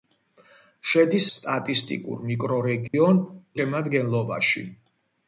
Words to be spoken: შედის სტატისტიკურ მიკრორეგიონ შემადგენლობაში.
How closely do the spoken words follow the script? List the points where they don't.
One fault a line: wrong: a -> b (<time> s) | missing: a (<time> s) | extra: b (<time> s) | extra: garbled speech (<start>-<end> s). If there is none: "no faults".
no faults